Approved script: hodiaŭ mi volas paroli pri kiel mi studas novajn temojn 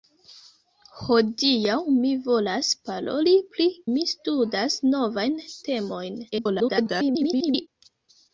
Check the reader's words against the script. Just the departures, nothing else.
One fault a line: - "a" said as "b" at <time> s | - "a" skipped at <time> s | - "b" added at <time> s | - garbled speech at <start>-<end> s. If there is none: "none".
- "kiel" skipped at 3.7 s
- garbled speech at 6.3-7.7 s